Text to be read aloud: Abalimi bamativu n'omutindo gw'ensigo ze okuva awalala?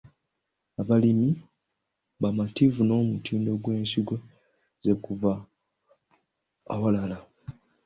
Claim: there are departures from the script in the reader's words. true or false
false